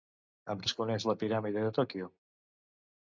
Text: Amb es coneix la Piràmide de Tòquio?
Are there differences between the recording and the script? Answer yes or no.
no